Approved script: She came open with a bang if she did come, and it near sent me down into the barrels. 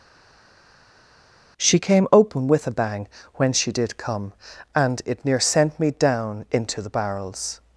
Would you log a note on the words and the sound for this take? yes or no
yes